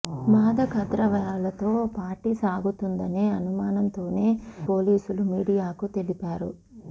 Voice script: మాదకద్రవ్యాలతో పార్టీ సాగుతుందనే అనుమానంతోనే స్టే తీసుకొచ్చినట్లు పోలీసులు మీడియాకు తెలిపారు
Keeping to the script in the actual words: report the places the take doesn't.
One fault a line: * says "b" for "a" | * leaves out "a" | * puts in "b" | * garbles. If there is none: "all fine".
* leaves out "స్టే తీసుకొచ్చినట్లు"